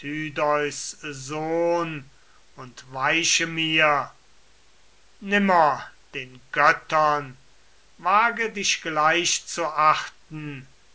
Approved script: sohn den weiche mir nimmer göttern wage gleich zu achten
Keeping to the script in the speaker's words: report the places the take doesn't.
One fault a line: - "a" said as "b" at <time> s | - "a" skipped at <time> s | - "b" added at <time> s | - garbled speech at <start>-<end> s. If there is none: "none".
- "den" said as "und" at 2.5 s
- "den" added at 6.2 s
- "dich" added at 8.5 s